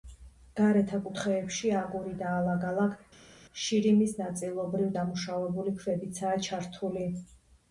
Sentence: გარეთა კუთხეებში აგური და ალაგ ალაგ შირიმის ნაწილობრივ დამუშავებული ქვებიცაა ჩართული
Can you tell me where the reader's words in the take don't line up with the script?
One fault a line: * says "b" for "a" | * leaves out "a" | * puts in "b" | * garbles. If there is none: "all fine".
all fine